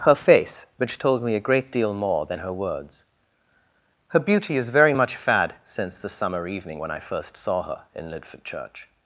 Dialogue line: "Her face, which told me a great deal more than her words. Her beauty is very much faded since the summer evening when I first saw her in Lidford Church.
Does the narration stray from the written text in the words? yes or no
yes